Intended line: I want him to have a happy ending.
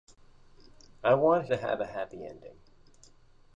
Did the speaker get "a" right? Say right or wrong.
right